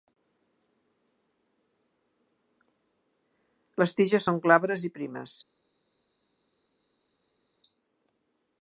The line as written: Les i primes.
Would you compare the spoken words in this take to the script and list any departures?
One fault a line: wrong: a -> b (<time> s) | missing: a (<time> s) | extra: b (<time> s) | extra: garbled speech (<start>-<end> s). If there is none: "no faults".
extra: tiges són glabres (4.0 s)